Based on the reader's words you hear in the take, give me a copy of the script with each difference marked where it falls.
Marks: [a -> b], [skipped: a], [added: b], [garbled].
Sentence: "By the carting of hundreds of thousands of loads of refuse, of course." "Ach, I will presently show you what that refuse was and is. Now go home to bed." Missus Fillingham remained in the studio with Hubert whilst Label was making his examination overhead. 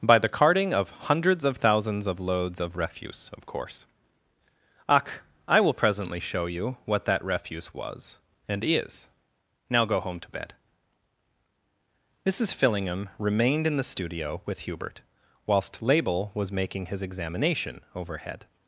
"By the carting of hundreds of thousands of loads of refuse, of course." "Ach, I will presently show you what that refuse was and is. Now go home to bed." Missus Fillingham remained in the studio with Hubert whilst Label was making his examination overhead.